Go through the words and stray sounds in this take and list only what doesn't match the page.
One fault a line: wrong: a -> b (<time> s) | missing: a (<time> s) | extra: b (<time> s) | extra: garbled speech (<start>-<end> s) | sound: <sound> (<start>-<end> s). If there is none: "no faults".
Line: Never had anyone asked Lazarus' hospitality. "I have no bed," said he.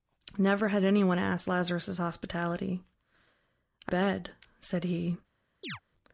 missing: have no (3.9 s)
sound: chirp (5.6-5.8 s)